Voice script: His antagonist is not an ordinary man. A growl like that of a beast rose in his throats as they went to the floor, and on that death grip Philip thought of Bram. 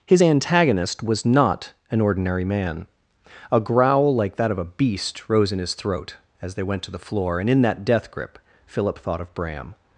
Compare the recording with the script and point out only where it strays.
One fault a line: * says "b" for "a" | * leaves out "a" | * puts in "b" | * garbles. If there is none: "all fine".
* says "was" for "is"
* says "throat" for "throats"
* says "in" for "on"